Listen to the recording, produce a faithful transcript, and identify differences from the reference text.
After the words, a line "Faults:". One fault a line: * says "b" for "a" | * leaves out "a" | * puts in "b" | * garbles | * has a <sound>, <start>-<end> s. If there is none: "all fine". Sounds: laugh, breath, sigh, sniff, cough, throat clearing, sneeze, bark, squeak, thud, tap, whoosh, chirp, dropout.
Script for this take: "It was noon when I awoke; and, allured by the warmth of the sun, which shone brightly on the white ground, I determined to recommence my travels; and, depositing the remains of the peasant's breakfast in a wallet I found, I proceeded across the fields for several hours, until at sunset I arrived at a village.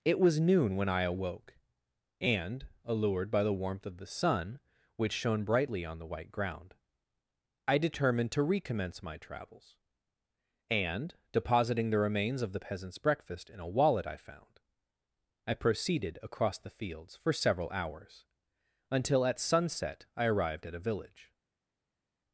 "It was noon when I awoke; and, allured by the warmth of the sun, which shone brightly on the white ground, I determined to recommence my travels; and, depositing the remains of the peasant's breakfast in a wallet I found, I proceeded across the fields for several hours, until at sunset I arrived at a village.
Faults:
all fine